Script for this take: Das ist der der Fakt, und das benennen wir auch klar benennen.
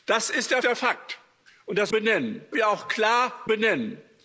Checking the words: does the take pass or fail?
pass